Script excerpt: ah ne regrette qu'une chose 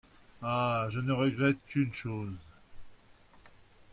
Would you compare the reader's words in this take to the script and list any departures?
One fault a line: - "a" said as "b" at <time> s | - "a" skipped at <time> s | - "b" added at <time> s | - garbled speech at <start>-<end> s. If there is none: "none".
- "je" added at 0.9 s